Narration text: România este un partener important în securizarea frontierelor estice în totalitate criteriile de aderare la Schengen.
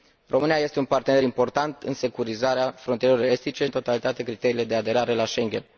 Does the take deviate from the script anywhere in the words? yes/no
no